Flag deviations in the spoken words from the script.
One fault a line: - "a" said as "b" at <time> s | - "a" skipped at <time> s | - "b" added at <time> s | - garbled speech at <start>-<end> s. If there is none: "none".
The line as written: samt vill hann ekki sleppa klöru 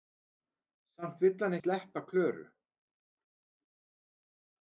- "ekki" skipped at 1.6 s